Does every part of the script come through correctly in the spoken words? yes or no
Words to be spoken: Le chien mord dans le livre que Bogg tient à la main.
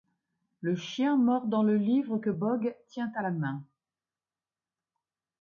yes